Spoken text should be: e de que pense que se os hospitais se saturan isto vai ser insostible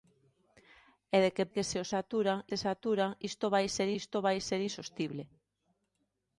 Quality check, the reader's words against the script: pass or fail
fail